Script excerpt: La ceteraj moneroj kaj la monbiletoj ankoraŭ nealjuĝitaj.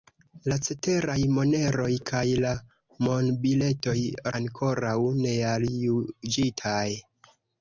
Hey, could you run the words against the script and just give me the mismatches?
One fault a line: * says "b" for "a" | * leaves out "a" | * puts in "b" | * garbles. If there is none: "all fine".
all fine